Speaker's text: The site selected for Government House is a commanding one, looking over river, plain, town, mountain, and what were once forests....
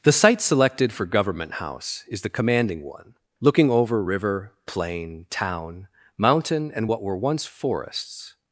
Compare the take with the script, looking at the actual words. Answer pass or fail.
fail